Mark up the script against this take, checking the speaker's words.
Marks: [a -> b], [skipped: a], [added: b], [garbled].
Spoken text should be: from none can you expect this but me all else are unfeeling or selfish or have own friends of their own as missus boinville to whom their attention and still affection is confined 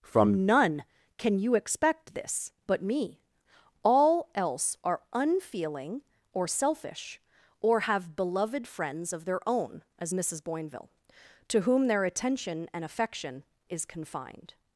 from none can you expect this but me all else are unfeeling or selfish or have [own -> beloved] friends of their own as missus boinville to whom their attention and [skipped: still] affection is confined